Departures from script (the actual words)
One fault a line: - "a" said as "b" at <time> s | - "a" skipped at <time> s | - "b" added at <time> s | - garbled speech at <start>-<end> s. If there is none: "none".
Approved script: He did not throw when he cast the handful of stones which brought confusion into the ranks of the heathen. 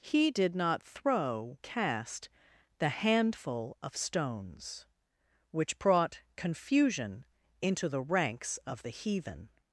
- "when he" skipped at 1.6 s